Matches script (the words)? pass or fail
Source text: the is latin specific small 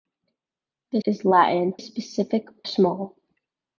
pass